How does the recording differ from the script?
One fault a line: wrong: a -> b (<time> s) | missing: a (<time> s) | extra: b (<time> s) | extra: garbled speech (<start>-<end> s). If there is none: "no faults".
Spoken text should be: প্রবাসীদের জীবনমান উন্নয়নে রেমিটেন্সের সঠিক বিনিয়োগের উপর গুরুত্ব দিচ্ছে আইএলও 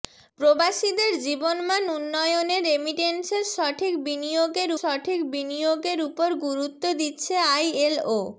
extra: সঠিক বিনিয়োগের (4.8 s)